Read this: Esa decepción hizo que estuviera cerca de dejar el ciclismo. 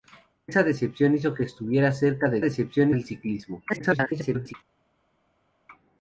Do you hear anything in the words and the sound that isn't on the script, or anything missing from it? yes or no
yes